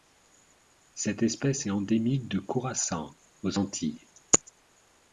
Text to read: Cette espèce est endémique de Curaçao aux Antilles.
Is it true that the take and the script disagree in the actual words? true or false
false